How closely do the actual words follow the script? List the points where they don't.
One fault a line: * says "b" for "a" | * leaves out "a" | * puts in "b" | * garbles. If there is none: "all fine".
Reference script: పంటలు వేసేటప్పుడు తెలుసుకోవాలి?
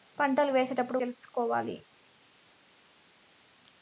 all fine